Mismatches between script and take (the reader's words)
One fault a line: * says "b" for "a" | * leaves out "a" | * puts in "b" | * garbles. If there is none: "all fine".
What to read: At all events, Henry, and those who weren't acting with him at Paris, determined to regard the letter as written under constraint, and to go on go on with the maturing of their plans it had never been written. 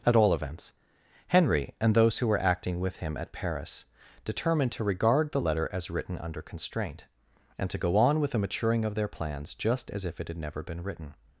* says "were" for "weren't"
* leaves out "go on"
* puts in "just as if"